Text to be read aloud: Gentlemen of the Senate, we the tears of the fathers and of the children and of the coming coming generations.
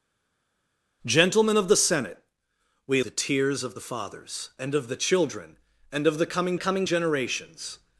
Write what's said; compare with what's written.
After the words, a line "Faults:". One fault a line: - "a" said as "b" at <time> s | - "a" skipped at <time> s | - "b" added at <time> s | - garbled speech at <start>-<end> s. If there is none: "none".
Gentlemen of the Senate, we the tears of the fathers and of the children and of the coming coming generations.
Faults:
none